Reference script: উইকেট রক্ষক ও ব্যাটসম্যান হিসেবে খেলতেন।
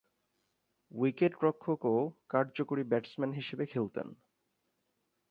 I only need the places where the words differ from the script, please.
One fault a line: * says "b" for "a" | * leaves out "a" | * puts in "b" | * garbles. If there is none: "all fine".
* puts in "কার্যকরী"